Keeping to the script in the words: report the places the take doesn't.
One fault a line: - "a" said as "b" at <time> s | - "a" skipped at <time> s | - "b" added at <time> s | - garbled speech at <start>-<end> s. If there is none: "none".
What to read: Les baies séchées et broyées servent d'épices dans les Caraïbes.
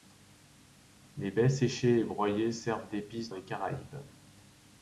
- "dans" skipped at 3.3 s